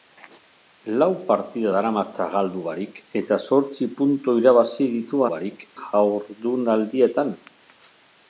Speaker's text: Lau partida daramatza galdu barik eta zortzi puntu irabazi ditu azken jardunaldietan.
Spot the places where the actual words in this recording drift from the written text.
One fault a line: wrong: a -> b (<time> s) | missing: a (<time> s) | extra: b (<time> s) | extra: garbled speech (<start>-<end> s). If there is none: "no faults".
wrong: azken -> barik (5.3 s)